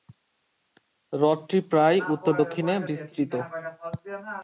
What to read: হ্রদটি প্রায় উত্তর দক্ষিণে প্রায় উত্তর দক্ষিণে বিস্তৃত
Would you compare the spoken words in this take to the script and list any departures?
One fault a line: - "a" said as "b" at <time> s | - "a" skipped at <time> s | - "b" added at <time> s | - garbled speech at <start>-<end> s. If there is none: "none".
- "প্রায় উত্তর দক্ষিণে" skipped at 2.7 s